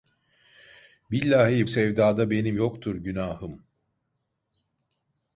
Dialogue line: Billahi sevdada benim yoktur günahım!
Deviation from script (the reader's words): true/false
false